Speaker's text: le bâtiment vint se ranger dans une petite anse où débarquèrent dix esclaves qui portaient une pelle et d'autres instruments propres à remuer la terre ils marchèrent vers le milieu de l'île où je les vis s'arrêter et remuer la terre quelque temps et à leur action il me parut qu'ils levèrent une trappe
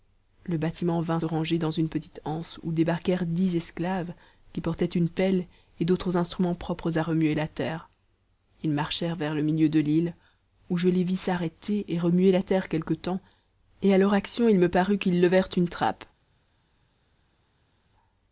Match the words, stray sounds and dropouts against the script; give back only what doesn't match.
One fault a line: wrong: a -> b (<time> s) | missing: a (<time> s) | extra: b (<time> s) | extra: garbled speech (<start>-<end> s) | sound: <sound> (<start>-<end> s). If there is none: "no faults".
missing: se (1.2 s)